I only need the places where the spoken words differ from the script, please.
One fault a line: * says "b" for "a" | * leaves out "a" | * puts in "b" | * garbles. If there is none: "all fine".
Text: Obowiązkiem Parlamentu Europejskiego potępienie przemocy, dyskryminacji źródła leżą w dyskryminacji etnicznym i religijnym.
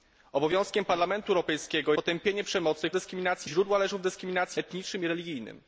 all fine